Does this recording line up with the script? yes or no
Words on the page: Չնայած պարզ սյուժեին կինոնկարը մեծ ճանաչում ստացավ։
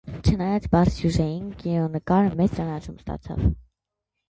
yes